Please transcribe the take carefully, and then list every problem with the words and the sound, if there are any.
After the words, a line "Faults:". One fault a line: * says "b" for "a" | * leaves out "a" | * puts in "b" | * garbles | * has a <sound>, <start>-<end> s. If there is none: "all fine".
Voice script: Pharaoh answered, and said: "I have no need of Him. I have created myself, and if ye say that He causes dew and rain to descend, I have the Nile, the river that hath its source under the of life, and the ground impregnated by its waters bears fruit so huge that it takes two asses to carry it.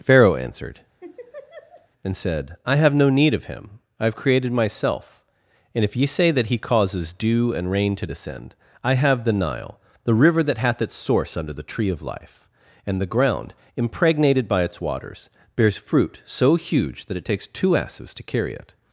Pharaoh answered, and said: "I have no need of Him. I have created myself, and if ye say that He causes dew and rain to descend, I have the Nile, the river that hath its source under the tree of life, and the ground impregnated by its waters bears fruit so huge that it takes two asses to carry it.
Faults:
* has a laugh, 1.0-1.9 s
* puts in "tree"